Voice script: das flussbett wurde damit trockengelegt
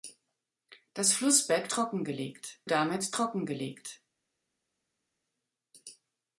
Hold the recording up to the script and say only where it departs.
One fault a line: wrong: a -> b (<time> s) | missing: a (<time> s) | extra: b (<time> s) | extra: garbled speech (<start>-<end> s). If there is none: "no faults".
wrong: wurde -> trockengelegt (1.7 s)